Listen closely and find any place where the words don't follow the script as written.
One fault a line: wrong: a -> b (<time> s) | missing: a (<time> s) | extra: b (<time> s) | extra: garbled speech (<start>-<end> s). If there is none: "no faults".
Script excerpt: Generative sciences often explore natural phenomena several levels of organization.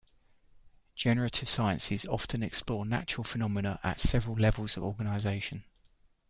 extra: at (3.8 s)